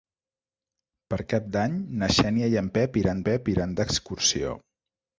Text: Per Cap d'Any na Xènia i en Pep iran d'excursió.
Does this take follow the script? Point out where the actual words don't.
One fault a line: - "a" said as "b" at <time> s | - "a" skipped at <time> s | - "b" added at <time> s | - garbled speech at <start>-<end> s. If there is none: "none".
- "Pep iran" added at 3.3 s